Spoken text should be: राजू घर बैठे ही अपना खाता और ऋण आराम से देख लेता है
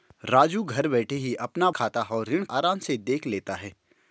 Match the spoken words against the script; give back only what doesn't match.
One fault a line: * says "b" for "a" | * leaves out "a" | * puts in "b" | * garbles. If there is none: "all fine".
all fine